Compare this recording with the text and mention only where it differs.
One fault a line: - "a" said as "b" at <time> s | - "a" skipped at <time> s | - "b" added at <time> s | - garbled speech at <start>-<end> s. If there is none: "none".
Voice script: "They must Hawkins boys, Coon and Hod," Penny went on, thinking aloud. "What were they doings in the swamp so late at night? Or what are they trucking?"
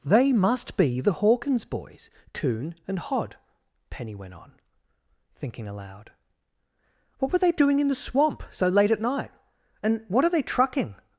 - "be the" added at 0.8 s
- "doings" said as "doing" at 7.5 s
- "Or" said as "And" at 9.8 s